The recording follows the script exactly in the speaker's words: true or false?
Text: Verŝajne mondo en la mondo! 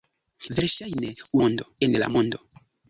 true